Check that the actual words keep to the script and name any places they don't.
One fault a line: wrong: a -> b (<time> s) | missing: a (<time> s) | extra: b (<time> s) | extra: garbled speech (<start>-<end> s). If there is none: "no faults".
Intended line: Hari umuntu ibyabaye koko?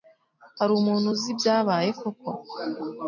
extra: uzi (1.1 s)